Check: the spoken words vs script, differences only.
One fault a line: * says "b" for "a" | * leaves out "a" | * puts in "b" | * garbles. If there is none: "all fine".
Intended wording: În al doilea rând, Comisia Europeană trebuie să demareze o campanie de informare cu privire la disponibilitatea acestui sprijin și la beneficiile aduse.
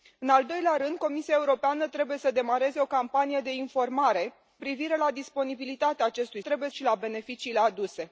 * leaves out "cu"
* says "trebuie" for "sprijin"